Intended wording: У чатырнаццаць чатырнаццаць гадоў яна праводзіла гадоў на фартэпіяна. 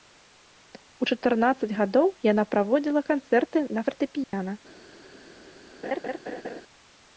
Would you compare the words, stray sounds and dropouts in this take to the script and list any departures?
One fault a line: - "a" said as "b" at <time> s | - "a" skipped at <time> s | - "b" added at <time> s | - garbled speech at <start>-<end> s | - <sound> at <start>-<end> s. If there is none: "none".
- "чатырнаццаць" skipped at 1.7 s
- "гадоў" said as "канцэрты" at 3.1 s
- dropout at 4.2-4.3 s
- laugh at 5.8-6.6 s